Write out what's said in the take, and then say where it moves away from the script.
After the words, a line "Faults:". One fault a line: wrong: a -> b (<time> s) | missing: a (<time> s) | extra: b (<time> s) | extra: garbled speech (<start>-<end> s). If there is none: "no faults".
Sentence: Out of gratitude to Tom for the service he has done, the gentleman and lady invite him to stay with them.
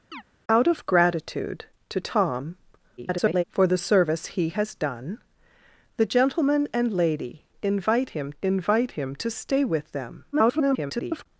Out of gratitude to Tom [garbled] for the service he has done, the gentleman and lady invite him invite him to stay with them. [garbled]
Faults:
extra: garbled speech (3.0-3.4 s)
extra: invite him (8.4 s)
extra: garbled speech (10.3-11.3 s)